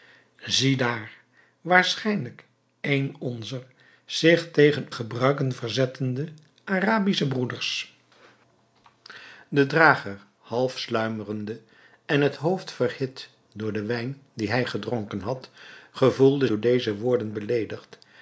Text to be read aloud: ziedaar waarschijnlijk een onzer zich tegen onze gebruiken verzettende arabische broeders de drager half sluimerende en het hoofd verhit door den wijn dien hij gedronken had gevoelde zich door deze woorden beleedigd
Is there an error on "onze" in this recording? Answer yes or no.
yes